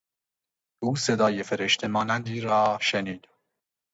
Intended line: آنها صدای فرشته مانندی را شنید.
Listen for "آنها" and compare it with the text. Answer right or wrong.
wrong